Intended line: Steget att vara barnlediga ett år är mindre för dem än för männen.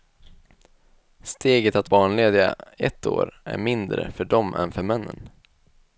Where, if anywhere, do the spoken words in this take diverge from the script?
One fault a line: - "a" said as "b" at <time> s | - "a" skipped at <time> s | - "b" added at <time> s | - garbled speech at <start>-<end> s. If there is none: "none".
- "vara" skipped at 1.9 s